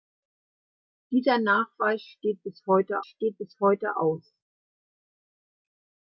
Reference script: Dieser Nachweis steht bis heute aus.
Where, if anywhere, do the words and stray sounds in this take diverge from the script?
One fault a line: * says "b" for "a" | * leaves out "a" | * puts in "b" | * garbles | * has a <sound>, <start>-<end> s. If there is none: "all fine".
* puts in "steht bis heute"